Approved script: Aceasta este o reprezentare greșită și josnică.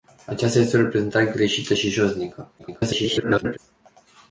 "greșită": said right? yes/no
yes